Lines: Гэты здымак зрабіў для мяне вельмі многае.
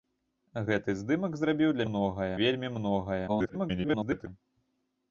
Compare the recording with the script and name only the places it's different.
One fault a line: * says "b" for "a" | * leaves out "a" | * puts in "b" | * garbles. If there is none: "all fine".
* says "многае" for "мяне"
* garbles